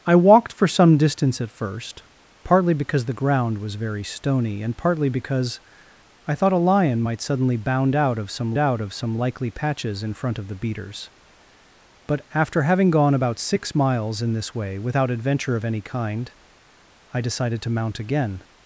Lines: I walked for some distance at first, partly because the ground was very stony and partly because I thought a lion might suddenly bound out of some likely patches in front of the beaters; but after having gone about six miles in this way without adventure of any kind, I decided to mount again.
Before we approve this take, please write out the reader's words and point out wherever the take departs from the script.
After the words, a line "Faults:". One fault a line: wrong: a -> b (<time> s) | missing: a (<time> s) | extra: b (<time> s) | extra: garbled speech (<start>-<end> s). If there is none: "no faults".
I walked for some distance at first, partly because the ground was very stony and partly because I thought a lion might suddenly bound out of some out of some likely patches in front of the beaters; but after having gone about six miles in this way without adventure of any kind, I decided to mount again.
Faults:
extra: out of some (8.6 s)